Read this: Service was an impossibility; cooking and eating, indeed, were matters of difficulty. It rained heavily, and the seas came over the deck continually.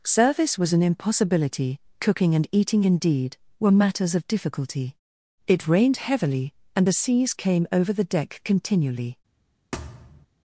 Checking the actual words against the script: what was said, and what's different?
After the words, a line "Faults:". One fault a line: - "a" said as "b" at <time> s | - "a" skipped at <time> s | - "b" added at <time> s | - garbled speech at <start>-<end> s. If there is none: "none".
Service was an impossibility; cooking and eating, indeed, were matters of difficulty. It rained heavily, and the seas came over the deck continually.
Faults:
none